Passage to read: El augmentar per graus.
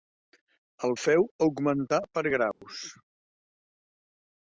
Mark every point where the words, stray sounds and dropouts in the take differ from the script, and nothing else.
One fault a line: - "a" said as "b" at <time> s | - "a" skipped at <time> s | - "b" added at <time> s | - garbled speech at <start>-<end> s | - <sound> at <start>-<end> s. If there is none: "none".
- "feu" added at 1.0 s
- dropout at 2.5-2.6 s